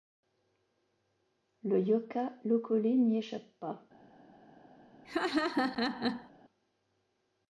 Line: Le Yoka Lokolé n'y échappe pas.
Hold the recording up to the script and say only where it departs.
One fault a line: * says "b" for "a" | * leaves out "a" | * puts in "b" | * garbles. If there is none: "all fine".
all fine